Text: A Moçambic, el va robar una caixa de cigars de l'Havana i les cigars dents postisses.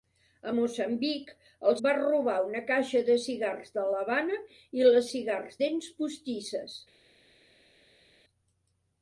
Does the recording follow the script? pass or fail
pass